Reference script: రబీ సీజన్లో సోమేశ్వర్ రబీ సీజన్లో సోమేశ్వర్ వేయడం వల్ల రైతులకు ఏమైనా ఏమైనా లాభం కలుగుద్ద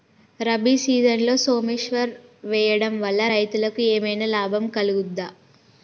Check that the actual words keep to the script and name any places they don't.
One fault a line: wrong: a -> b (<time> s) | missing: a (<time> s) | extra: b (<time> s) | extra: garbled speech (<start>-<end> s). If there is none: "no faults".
missing: రబీ సీజన్లో సోమేశ్వర్ (2.1 s)
missing: ఏమైనా (4.2 s)